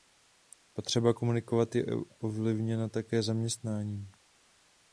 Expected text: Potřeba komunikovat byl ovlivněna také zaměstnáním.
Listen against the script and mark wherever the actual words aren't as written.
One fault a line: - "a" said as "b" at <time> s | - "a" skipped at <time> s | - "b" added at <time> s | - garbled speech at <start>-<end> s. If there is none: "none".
- "byl" said as "je" at 1.8 s